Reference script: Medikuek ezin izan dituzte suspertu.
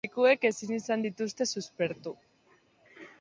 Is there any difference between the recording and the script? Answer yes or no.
no